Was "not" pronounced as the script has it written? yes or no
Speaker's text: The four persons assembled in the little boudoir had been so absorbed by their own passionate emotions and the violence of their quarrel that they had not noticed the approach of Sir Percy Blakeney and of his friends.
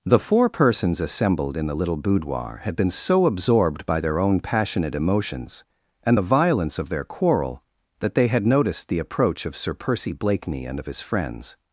no